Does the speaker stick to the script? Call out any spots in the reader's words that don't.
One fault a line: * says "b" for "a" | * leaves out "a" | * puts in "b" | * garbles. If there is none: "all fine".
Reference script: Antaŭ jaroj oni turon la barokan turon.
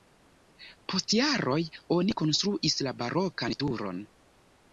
* says "Post" for "Antaŭ"
* says "konstruis" for "turon"